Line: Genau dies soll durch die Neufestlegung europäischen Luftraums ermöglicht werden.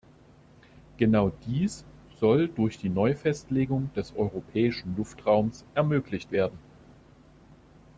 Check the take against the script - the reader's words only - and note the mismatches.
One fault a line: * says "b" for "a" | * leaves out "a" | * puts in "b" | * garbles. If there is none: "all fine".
* puts in "des"